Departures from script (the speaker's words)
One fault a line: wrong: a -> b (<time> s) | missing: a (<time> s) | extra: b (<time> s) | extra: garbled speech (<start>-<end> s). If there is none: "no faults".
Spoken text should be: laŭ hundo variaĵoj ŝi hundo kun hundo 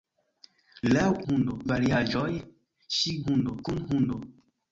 no faults